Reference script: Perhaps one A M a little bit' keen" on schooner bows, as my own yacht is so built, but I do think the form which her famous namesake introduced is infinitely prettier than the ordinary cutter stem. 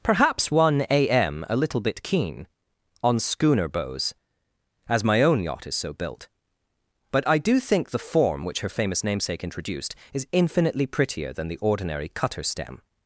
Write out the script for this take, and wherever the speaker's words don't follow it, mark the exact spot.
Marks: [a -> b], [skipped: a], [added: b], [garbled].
Perhaps one A M a little bit' keen" on schooner bows, as my own yacht is so built, but I do think the form which her famous namesake introduced is infinitely prettier than the ordinary cutter stem.